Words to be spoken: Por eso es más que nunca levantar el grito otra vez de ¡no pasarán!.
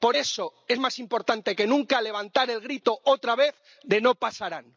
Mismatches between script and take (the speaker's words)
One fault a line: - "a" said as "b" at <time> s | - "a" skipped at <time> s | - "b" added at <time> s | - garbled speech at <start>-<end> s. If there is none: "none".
- "importante" added at 1.0 s